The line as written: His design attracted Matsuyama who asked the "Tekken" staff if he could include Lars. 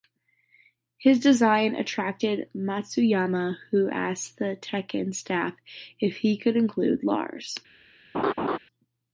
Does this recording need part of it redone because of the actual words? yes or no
no